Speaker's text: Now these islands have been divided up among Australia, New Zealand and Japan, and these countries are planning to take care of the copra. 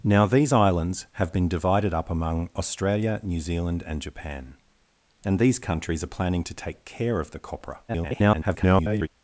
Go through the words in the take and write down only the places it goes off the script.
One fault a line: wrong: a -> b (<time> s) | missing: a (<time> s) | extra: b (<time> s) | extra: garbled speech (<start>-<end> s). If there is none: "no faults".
extra: garbled speech (7.9-9.1 s)